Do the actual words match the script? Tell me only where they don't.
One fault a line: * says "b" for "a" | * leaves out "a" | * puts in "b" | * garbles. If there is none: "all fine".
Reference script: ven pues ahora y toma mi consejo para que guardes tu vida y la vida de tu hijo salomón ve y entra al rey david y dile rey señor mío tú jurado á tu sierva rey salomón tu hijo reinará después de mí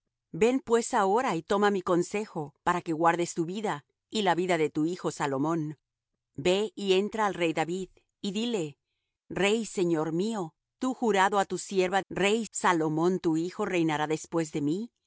all fine